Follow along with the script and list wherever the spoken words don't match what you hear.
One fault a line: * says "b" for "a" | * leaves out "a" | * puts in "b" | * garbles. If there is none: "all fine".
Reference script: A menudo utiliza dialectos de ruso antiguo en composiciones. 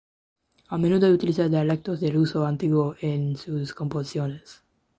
* puts in "sus"